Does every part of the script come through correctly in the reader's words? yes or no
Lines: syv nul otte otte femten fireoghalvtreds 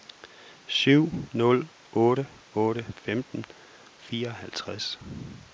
yes